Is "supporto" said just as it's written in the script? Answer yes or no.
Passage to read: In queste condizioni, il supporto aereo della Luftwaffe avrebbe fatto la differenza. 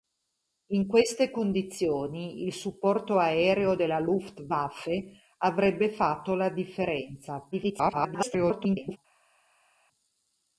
yes